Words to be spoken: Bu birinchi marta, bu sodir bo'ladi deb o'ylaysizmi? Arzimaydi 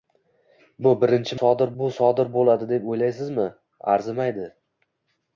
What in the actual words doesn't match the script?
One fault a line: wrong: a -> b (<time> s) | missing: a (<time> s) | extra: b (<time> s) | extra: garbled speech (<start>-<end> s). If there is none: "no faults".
wrong: marta -> sodir (1.4 s)